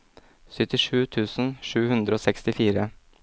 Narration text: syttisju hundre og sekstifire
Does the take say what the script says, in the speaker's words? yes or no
no